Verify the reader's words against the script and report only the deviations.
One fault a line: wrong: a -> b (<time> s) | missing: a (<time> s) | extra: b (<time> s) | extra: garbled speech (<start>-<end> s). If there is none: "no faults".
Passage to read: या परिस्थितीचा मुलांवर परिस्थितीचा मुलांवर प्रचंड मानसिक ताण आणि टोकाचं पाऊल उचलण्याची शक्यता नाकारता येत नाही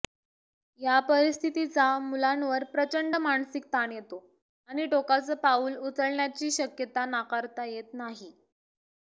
missing: परिस्थितीचा मुलांवर (2.6 s)
extra: येतो (3.9 s)